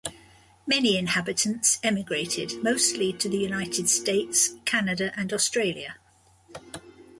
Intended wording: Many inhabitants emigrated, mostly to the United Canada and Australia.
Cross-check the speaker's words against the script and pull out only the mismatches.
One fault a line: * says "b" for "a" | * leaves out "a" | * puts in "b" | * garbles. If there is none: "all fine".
* puts in "States"